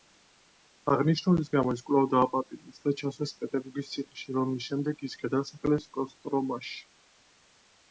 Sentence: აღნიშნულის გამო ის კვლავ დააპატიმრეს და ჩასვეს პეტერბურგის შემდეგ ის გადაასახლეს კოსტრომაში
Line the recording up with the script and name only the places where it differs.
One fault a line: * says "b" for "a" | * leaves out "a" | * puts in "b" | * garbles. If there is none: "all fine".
* puts in "ციხეში რომლის"